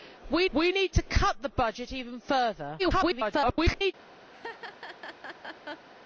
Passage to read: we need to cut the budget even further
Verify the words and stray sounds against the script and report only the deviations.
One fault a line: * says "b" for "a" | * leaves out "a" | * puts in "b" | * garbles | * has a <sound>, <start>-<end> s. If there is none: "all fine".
* puts in "we"
* garbles
* has a laugh, 4.3-5.9 s